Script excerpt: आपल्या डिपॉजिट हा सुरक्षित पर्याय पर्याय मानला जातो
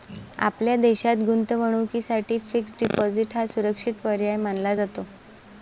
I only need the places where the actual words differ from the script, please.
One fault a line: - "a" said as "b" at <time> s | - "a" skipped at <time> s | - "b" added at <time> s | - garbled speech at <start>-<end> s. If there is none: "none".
- "देशात गुंतवणुकीसाठी फिक्स्ड" added at 0.8 s
- "पर्याय" skipped at 4.3 s